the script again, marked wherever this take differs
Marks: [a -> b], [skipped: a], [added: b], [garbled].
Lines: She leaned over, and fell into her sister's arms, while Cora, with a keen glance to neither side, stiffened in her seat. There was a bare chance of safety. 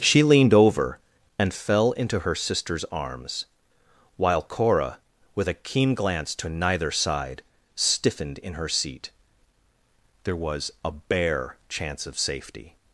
She leaned over, and fell into her sister's arms, while Cora, with a keen glance to neither side, stiffened in her seat. There was a bare chance of safety.